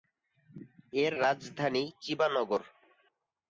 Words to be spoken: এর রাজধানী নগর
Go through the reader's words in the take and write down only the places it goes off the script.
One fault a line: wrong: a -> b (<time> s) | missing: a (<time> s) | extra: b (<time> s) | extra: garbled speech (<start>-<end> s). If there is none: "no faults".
extra: চিবা (2.0 s)